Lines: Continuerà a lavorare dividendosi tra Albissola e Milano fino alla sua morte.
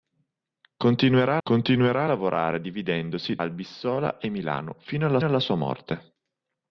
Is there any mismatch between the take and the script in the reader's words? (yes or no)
yes